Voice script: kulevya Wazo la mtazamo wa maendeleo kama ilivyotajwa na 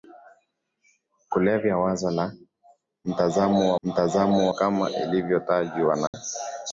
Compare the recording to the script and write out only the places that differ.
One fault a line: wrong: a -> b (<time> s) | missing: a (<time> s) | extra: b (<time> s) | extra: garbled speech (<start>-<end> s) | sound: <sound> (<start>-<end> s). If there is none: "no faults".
wrong: maendeleo -> mtazamo (3.8 s)
sound: dropout (6.1-6.1 s)